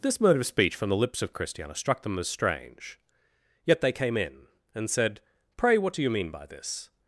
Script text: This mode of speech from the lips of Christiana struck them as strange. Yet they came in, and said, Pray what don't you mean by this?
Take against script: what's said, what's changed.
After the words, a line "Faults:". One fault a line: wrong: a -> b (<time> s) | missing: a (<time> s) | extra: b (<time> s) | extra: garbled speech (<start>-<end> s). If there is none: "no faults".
This mode of speech from the lips of Christiana struck them as strange. Yet they came in, and said, Pray what do you mean by this?
Faults:
wrong: don't -> do (5.9 s)